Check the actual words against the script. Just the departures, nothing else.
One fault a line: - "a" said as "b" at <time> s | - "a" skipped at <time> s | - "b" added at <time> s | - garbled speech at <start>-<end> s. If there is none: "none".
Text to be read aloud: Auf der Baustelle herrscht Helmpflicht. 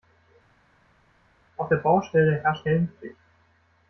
none